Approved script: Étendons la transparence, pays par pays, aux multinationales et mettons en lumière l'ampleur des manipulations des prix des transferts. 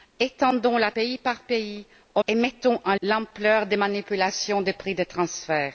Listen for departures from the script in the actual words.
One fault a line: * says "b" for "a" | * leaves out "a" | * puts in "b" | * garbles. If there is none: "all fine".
* leaves out "transparence"
* leaves out "multinationales"
* leaves out "lumière"